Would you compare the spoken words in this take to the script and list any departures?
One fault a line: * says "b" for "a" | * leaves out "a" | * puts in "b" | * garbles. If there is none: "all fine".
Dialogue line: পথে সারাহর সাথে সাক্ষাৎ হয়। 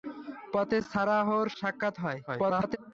* leaves out "সাথে"
* garbles